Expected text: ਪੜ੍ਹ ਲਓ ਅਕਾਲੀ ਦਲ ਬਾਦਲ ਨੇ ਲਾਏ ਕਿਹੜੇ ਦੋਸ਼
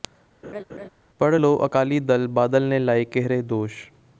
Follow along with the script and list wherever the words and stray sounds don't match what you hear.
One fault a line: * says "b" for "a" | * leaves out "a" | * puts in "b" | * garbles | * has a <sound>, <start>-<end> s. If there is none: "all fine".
* has a laugh, 0.4-0.9 s